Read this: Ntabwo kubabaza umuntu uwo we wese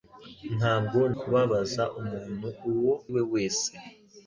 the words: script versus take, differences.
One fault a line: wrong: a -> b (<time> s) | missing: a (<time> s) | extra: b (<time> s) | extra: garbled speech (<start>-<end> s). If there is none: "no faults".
no faults